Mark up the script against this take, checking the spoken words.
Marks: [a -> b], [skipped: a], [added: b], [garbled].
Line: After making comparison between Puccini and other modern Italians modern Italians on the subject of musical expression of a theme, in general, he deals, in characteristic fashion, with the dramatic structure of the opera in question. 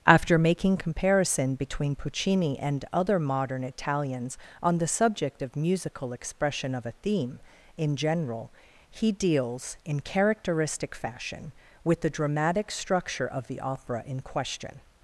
After making comparison between Puccini and other modern Italians [skipped: modern Italians] on the subject of musical expression of a theme, in general, he deals, in characteristic fashion, with the dramatic structure of the opera in question.